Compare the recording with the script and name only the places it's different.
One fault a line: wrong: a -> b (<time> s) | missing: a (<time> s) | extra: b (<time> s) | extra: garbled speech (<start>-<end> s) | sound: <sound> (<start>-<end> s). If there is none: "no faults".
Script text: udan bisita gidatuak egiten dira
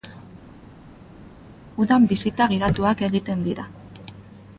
no faults